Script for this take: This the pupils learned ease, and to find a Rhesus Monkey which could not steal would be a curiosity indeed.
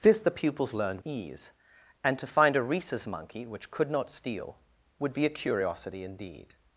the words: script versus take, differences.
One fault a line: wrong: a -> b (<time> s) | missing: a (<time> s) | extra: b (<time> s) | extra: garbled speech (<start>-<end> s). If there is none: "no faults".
no faults